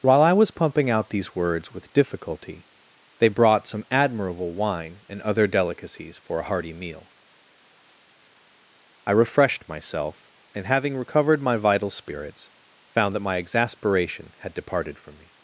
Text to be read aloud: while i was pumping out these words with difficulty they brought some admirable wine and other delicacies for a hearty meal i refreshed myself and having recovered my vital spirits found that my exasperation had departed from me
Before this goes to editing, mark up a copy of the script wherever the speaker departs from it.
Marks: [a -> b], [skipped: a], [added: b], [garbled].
while i was pumping out these words with difficulty they brought some admirable wine and other delicacies for a hearty meal i refreshed myself and having recovered my vital spirits found that my exasperation had departed from me